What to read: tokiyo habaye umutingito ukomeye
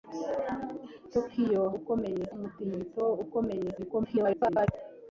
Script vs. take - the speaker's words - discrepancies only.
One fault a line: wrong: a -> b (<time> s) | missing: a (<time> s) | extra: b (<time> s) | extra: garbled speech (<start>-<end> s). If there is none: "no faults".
wrong: habaye -> ukomeye (1.8 s)
extra: garbled speech (3.8-4.7 s)